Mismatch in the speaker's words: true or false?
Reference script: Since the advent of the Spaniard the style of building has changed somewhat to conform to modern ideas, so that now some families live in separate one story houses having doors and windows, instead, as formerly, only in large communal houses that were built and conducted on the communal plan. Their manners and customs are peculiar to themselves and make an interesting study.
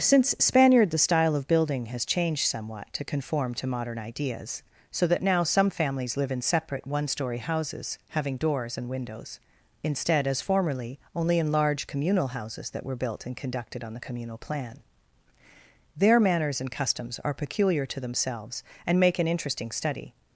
true